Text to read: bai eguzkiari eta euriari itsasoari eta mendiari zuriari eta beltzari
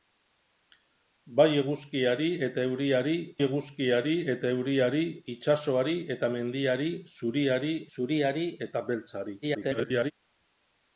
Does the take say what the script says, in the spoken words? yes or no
no